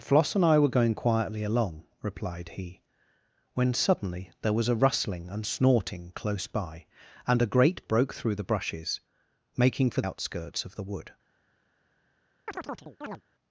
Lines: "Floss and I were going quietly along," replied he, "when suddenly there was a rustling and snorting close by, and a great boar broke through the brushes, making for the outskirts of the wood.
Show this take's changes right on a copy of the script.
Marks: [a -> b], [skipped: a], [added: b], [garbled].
"Floss and I were going quietly along," replied he, "when suddenly there was a rustling and snorting close by, and a great [skipped: boar] broke through the brushes, making for [skipped: the] outskirts of the wood.